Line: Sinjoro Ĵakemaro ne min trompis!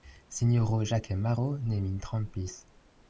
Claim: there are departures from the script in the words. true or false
false